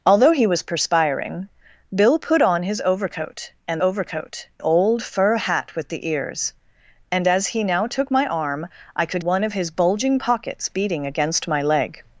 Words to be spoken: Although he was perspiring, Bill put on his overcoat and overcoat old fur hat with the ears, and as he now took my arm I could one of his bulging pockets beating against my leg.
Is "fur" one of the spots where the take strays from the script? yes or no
no